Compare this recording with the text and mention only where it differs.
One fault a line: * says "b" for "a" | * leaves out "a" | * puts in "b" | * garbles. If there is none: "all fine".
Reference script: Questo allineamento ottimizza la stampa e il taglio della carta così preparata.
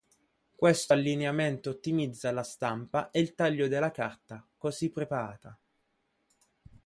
all fine